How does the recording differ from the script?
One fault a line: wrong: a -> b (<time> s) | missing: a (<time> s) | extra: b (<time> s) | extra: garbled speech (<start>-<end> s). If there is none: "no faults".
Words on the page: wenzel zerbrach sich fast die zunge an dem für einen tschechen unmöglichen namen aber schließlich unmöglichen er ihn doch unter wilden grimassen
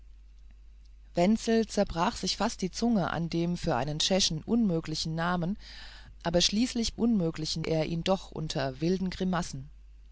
no faults